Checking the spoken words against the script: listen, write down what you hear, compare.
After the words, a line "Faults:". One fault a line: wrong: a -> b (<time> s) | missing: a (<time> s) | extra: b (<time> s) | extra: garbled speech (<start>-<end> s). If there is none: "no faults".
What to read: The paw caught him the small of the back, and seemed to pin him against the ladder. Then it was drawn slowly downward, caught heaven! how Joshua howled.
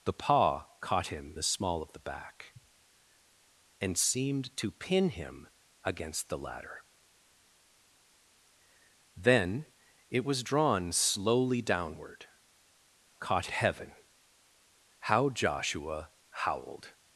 The paw caught him the small of the back, and seemed to pin him against the ladder. Then it was drawn slowly downward, caught heaven! how Joshua howled.
Faults:
no faults